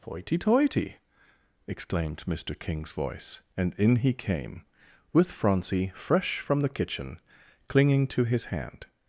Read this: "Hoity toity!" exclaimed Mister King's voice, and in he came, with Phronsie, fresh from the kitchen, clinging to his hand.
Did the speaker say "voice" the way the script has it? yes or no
yes